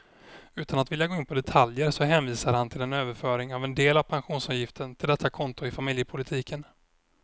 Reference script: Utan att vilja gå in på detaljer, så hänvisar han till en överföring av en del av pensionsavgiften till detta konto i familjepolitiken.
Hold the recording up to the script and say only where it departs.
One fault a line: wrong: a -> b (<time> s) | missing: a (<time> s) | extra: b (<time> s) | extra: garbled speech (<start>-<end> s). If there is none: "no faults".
no faults